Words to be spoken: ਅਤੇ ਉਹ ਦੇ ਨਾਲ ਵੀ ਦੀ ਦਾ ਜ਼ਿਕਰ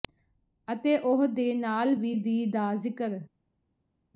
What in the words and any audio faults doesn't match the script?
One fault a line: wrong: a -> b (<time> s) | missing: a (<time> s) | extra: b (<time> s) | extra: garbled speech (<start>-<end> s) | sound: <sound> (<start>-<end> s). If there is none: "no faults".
no faults